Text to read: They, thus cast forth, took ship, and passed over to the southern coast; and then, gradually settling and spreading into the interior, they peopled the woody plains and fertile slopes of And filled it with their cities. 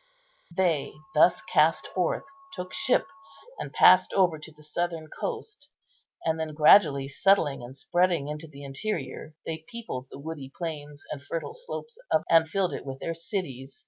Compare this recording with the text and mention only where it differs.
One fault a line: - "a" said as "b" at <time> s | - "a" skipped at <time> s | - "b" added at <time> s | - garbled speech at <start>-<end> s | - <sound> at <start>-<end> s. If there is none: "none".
none